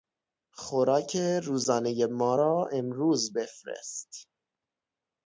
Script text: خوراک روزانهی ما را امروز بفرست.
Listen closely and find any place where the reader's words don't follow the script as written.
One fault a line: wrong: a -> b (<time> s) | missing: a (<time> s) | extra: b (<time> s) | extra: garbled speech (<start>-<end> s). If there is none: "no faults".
no faults